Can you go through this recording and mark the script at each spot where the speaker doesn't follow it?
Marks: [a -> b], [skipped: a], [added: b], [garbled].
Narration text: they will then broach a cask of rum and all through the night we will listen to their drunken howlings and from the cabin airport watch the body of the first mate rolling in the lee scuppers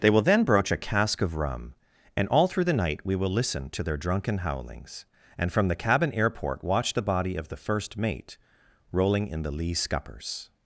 they will then broach a cask of rum and all through the night we will listen to their drunken howlings and from the cabin airport watch the body of the first mate rolling in the lee scuppers